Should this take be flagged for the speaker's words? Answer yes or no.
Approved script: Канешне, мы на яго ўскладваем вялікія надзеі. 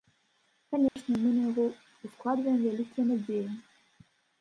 no